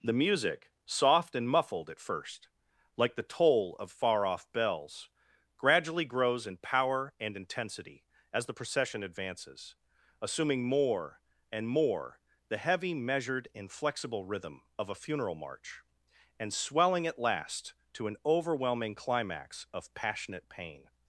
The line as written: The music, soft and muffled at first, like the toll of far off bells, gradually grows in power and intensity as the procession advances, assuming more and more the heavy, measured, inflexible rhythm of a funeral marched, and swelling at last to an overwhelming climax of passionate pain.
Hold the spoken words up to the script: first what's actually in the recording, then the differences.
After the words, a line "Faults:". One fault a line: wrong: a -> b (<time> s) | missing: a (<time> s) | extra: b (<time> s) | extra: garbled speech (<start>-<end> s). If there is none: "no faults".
The music, soft and muffled at first, like the toll of far off bells, gradually grows in power and intensity as the procession advances, assuming more and more the heavy, measured, inflexible rhythm of a funeral march, and swelling at last to an overwhelming climax of passionate pain.
Faults:
wrong: marched -> march (15.4 s)